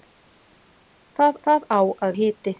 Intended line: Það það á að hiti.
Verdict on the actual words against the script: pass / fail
pass